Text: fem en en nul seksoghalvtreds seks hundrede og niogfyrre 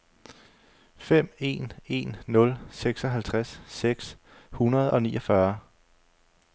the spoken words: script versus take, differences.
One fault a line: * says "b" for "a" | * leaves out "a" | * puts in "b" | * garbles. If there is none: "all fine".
all fine